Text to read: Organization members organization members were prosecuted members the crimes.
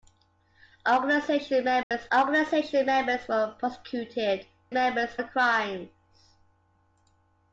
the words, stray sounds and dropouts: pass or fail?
fail